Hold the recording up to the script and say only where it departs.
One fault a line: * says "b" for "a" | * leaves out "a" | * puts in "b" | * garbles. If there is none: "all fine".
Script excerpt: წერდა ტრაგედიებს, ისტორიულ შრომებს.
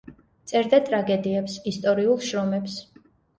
all fine